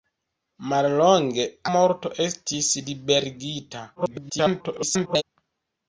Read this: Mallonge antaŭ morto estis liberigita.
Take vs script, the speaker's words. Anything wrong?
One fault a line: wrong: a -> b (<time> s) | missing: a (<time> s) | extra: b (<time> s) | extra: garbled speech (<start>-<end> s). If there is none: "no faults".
missing: antaŭ (1.4 s)
extra: garbled speech (4.0-5.2 s)